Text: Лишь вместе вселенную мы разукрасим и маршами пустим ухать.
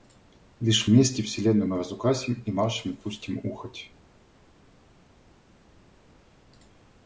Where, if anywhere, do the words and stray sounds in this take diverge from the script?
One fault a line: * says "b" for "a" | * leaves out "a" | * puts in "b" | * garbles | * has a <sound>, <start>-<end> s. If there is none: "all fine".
all fine